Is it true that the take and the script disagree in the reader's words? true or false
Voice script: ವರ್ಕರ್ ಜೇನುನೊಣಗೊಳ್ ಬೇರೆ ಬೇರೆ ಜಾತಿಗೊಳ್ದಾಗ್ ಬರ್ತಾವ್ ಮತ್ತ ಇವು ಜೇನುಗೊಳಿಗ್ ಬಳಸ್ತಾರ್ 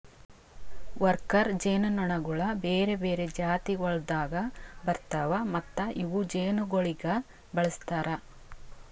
false